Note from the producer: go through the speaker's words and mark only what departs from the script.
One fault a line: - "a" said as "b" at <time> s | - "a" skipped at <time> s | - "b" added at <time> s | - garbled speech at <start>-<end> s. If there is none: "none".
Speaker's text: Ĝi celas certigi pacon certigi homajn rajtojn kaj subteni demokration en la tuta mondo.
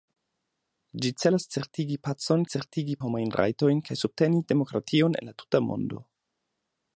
none